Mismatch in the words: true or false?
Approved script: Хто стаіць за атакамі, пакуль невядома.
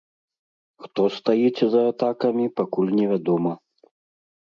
false